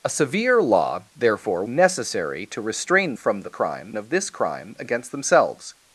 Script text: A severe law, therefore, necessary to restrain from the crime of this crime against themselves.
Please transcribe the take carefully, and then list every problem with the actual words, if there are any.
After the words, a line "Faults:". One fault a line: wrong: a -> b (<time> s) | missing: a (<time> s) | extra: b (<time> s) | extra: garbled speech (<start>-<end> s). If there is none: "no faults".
A severe law, therefore, necessary to restrain from the crime of this crime against themselves.
Faults:
no faults